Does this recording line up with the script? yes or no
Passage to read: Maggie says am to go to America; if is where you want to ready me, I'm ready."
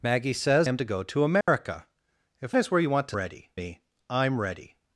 yes